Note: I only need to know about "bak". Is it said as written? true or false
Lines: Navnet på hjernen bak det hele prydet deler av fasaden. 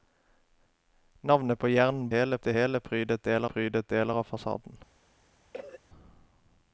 false